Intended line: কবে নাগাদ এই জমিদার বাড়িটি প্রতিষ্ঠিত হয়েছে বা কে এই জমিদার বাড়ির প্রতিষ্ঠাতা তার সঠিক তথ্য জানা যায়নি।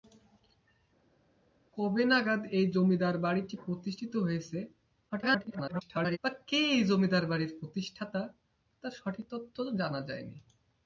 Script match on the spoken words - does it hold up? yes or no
no